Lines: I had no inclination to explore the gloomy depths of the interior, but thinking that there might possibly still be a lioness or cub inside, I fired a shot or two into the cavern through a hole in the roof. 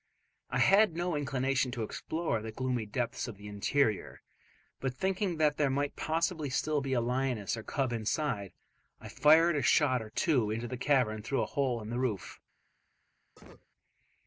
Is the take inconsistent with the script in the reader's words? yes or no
no